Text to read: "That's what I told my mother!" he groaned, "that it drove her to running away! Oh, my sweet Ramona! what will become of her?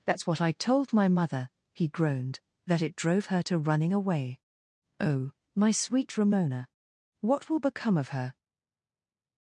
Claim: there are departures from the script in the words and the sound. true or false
false